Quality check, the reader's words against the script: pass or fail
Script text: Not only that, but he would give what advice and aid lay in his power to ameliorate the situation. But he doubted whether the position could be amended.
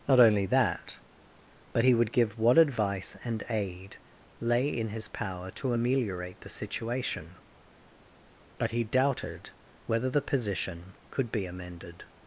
pass